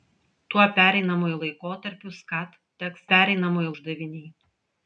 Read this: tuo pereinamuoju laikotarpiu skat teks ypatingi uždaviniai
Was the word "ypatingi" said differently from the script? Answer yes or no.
yes